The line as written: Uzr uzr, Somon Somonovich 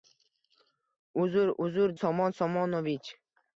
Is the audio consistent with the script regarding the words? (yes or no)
yes